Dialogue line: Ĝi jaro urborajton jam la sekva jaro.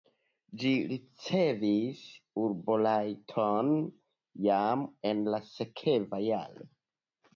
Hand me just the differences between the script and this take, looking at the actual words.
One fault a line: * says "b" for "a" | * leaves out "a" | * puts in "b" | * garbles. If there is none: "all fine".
* says "ricevis" for "jaro"
* puts in "en"